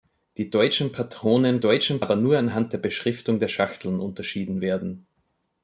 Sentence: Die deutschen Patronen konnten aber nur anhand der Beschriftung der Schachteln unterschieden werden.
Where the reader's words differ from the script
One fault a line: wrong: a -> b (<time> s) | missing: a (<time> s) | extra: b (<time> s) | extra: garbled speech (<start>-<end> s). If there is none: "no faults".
wrong: konnten -> deutschen (1.6 s)